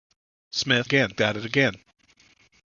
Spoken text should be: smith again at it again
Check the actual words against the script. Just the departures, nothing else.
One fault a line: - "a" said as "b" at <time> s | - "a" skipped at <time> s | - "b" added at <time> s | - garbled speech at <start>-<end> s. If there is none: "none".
none